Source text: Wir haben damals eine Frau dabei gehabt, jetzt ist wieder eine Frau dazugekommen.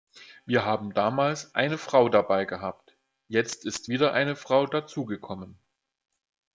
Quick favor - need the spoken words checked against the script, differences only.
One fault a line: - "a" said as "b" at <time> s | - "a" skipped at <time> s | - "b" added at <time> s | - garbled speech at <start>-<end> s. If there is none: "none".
none